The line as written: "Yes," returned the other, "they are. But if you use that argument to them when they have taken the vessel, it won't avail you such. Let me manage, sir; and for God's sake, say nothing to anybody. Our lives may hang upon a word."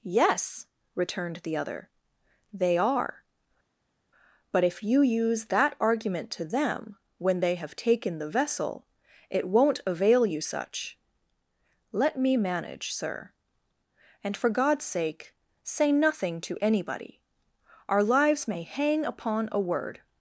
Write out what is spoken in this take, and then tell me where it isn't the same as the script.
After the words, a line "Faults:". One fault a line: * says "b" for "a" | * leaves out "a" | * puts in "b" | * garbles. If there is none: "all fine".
"Yes," returned the other, "they are. But if you use that argument to them when they have taken the vessel, it won't avail you such. Let me manage, sir; and for God's sake, say nothing to anybody. Our lives may hang upon a word."
Faults:
all fine